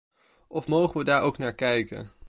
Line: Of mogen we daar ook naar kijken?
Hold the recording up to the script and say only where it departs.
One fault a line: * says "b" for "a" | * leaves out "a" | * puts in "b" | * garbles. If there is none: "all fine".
all fine